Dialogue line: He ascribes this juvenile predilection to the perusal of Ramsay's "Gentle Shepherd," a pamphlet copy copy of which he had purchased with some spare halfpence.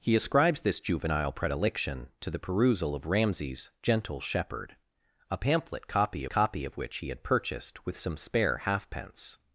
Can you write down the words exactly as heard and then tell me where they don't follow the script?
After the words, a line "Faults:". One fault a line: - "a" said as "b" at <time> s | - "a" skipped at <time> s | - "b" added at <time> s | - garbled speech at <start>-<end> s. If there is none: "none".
He ascribes this juvenile predilection to the perusal of Ramsay's "Gentle Shepherd," a pamphlet copy copy of which he had purchased with some spare halfpence.
Faults:
none